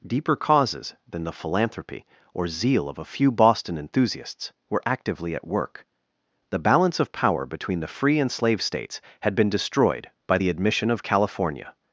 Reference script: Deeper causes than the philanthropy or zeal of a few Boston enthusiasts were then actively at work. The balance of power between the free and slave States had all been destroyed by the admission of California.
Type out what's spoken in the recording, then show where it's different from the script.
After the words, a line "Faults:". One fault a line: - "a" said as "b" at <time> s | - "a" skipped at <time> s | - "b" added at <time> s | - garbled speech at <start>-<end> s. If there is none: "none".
Deeper causes than the philanthropy or zeal of a few Boston enthusiasts were actively at work. The balance of power between the free and slave States had been destroyed by the admission of California.
Faults:
- "then" skipped at 4.8 s
- "all" skipped at 9.3 s